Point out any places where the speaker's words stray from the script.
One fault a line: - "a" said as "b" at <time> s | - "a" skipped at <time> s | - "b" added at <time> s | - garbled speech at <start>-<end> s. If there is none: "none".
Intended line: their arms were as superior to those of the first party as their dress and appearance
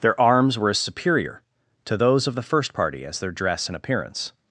none